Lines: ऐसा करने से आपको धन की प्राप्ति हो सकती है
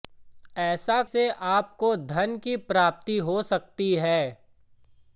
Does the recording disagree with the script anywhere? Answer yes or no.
yes